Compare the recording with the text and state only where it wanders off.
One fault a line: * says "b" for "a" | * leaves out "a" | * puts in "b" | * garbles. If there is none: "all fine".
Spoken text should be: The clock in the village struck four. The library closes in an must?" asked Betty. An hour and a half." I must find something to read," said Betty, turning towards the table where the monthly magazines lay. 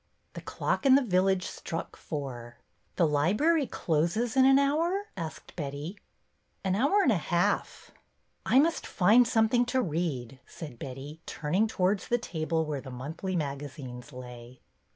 * says "hour" for "must"